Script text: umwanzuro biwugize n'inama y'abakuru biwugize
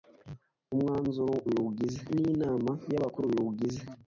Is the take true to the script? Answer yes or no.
yes